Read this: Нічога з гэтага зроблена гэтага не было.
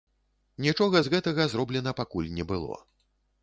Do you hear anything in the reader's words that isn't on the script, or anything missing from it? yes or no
yes